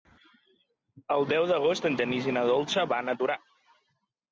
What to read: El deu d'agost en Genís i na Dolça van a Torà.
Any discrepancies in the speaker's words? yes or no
no